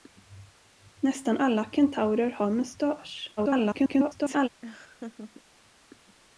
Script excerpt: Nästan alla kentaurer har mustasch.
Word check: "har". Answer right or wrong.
right